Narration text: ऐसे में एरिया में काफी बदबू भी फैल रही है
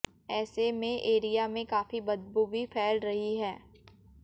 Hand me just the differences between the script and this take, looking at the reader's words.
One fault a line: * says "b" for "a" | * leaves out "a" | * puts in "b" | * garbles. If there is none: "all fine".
all fine